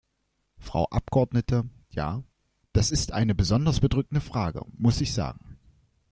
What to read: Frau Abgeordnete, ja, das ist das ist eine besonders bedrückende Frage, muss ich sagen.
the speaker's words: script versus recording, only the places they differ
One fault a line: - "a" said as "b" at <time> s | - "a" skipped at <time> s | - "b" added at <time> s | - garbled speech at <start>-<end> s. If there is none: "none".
- "das ist" skipped at 3.1 s